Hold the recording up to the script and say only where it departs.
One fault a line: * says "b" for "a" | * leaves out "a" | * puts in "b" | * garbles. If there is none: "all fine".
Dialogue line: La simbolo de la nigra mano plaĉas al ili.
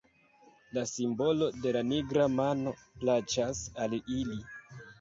all fine